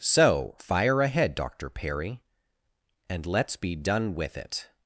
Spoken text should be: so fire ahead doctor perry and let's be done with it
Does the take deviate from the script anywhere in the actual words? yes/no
no